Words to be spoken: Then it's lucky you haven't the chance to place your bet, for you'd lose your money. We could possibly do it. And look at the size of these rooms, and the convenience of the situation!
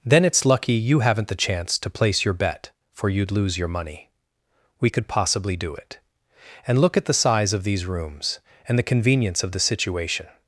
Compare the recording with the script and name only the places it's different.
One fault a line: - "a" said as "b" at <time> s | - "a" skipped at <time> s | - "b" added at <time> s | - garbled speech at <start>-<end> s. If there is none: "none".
none